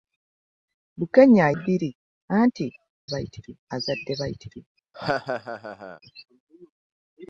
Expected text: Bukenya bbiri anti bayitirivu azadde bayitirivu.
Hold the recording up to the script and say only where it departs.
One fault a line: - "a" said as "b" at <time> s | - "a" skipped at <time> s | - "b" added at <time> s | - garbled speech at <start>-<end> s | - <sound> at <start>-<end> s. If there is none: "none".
- laugh at 4.9-6.0 s